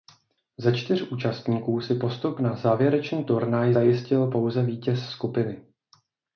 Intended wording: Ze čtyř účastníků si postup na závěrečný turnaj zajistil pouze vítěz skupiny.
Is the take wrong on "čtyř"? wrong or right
right